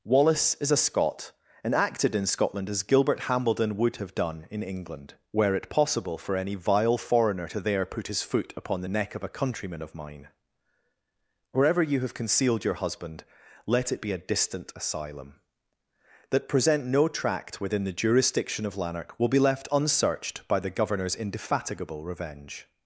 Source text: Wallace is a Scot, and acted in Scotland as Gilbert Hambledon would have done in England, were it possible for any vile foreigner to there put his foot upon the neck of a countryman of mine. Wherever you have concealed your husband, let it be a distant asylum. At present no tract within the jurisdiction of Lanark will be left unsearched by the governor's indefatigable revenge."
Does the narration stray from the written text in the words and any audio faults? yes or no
yes